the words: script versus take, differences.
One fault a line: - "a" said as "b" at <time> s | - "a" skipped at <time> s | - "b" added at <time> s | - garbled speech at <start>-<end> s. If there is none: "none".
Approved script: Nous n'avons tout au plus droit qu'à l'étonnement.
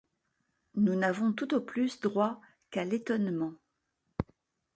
none